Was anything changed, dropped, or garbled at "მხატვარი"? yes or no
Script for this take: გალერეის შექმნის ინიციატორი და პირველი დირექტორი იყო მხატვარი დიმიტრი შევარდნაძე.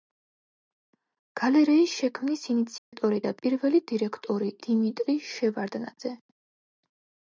yes